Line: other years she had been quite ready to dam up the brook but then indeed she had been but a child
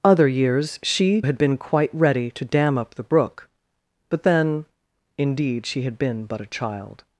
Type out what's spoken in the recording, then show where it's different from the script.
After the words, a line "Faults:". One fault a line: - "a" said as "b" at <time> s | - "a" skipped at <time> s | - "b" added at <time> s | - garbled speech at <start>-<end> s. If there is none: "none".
other years she had been quite ready to dam up the brook but then indeed she had been but a child
Faults:
none